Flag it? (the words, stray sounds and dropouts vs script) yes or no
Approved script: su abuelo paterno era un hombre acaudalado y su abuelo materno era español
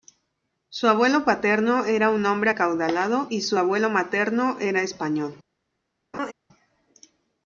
yes